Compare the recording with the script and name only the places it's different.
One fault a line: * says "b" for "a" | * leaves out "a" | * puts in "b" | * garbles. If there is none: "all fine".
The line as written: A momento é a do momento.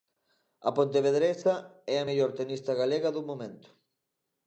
* says "pontevedresa" for "momento"
* puts in "mellor tenista galega"